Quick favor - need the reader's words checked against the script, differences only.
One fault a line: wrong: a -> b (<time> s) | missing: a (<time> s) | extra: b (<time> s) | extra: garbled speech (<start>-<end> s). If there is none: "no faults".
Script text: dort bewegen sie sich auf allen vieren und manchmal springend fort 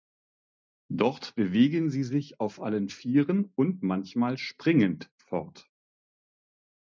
no faults